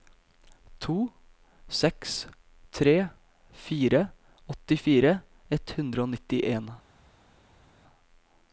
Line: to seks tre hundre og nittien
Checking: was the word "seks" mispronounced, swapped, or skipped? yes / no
no